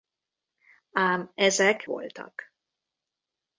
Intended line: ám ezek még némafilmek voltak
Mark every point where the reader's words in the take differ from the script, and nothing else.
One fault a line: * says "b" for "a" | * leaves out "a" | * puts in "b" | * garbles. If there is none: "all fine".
* leaves out "még némafilmek"